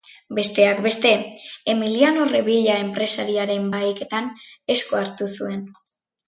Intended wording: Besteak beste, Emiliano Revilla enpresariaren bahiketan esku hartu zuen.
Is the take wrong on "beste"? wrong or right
right